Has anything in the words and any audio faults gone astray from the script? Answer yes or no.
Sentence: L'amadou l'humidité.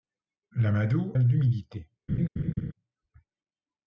yes